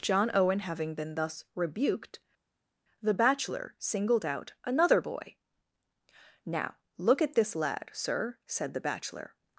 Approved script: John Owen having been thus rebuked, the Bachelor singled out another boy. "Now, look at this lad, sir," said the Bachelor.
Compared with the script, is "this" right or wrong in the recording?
right